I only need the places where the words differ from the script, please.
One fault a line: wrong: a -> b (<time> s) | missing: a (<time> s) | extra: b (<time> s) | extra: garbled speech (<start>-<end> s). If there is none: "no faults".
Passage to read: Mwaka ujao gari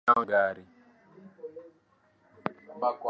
no faults